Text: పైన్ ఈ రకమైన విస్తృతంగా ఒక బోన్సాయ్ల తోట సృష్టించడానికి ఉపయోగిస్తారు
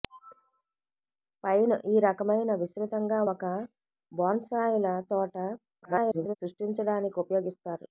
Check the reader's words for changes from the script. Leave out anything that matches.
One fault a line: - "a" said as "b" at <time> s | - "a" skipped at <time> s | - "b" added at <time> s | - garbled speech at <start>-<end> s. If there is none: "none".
- garbled speech at 5.8-6.4 s